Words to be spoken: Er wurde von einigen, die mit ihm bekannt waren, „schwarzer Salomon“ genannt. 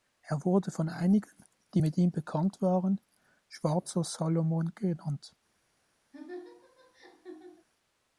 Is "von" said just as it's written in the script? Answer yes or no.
yes